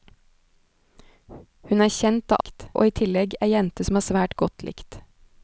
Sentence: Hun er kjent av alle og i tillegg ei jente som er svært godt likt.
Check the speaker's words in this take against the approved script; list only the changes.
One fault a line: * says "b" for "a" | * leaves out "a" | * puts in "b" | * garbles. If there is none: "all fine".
* says "likt" for "alle"